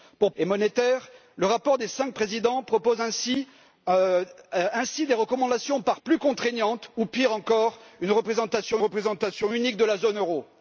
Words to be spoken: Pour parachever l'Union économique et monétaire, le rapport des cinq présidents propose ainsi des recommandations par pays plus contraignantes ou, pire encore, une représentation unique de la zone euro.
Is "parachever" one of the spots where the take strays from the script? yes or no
yes